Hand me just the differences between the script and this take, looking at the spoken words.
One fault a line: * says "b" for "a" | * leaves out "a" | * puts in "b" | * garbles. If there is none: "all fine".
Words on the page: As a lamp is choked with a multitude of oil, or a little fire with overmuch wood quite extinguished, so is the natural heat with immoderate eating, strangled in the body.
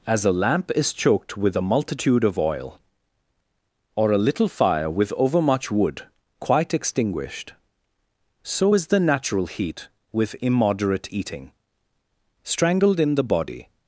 all fine